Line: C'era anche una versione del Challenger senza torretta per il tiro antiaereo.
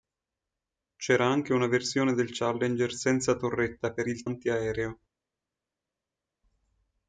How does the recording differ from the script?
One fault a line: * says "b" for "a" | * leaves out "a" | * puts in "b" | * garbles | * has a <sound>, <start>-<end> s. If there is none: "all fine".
* leaves out "tiro"